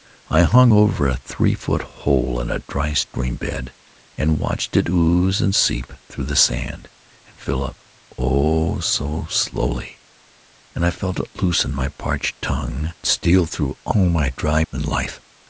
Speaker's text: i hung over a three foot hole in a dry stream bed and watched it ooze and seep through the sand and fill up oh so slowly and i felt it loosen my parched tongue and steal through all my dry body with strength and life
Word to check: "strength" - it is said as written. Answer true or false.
false